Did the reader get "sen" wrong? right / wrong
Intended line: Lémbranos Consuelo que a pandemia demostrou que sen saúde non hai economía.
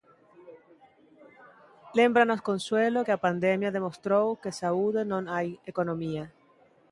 wrong